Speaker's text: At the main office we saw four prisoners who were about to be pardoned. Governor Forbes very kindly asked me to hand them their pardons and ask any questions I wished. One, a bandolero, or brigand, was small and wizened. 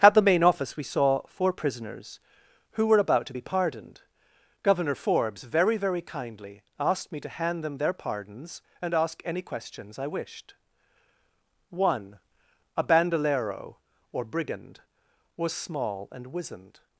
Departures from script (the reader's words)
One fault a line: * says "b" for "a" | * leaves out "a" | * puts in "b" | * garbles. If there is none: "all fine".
* puts in "very"